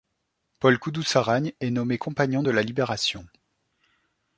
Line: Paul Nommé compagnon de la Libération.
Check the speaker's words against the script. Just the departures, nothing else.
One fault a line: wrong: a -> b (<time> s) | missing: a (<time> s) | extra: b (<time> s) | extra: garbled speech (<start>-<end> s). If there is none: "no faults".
extra: Koudoussaragne est (0.8 s)